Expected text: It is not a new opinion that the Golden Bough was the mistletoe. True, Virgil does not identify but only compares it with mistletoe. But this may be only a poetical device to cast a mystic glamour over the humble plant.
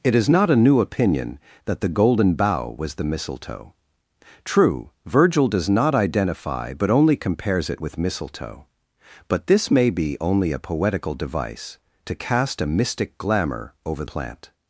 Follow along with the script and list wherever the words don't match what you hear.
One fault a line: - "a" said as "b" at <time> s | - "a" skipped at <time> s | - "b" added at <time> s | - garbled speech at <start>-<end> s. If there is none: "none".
- "the humble" skipped at 14.0 s